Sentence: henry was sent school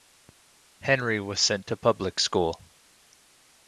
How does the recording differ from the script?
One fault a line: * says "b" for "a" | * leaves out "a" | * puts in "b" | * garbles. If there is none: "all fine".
* puts in "to public"